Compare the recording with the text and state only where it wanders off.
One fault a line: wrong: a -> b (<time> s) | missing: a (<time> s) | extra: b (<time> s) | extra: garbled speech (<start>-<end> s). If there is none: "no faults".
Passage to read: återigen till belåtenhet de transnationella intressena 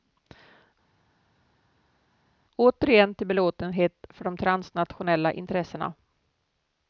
extra: för (4.1 s)